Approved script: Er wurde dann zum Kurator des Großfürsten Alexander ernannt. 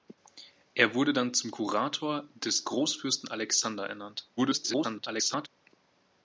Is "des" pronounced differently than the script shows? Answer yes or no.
no